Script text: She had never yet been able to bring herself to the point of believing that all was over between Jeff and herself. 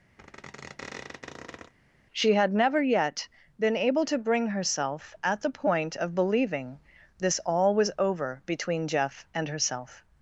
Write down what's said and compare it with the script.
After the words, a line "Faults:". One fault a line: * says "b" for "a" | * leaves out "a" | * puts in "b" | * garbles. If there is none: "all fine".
She had never yet been able to bring herself at the point of believing this all was over between Jeff and herself.
Faults:
* says "at" for "to"
* says "this" for "that"